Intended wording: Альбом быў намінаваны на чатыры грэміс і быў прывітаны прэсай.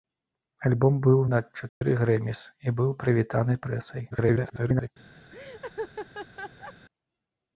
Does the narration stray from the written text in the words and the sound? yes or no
yes